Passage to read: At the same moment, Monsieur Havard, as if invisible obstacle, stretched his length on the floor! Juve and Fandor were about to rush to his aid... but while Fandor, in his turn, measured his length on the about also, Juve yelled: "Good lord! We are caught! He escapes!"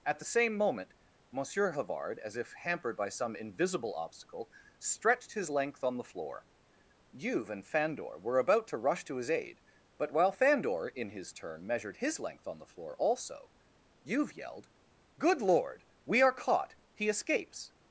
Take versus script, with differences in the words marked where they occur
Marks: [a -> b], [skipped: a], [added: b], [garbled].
At the same moment, Monsieur Havard, as if [added: hampered by some] invisible obstacle, stretched his length on the floor! Juve and Fandor were about to rush to his aid... but while Fandor, in his turn, measured his length on the [about -> floor] also, Juve yelled: "Good lord! We are caught! He escapes!"